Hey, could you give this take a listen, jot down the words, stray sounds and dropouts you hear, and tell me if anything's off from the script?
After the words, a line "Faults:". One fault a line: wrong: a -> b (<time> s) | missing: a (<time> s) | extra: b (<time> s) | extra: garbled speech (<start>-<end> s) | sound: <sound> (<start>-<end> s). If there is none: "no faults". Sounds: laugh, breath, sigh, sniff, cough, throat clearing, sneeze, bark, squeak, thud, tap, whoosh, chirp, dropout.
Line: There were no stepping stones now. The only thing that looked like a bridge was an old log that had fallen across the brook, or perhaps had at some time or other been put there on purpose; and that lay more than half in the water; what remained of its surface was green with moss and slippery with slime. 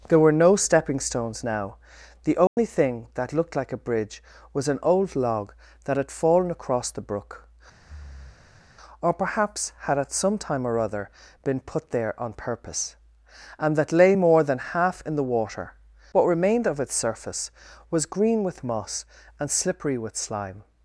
There were no stepping stones now. The only thing that looked like a bridge was an old log that had fallen across the brook, or perhaps had at some time or other been put there on purpose; and that lay more than half in the water; what remained of its surface was green with moss and slippery with slime.
Faults:
sound: dropout (2.5-2.6 s)
sound: breath (7.8-8.7 s)